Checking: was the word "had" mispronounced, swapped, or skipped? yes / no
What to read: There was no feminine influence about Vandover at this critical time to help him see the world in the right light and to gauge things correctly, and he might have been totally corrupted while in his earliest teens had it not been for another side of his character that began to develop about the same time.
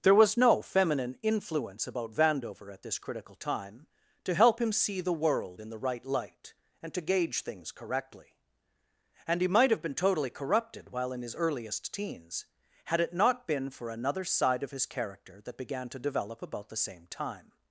no